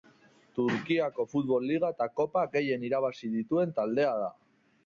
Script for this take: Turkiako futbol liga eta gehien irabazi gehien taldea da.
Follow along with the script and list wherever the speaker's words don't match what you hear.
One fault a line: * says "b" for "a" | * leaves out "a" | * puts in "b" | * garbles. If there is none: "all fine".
* puts in "kopa"
* says "dituen" for "gehien"